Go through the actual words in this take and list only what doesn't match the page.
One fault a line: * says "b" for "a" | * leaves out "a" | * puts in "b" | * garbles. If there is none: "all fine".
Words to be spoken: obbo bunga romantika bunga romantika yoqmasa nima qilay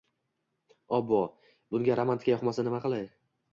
* leaves out "bunga romantika"